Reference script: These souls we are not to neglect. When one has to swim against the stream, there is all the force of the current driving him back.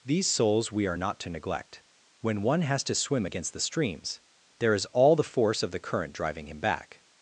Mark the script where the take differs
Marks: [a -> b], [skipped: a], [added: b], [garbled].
These souls we are not to neglect. When one has to swim against the [stream, -> streams] there is all the force of the current driving him back.